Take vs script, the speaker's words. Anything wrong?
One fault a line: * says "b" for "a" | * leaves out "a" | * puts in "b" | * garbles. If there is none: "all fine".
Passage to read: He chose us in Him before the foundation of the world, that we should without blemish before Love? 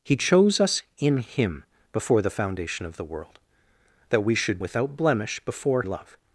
all fine